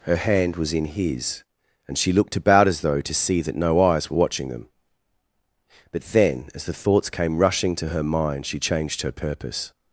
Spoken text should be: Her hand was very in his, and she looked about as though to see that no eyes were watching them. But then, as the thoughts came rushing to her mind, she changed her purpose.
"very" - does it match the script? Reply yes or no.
no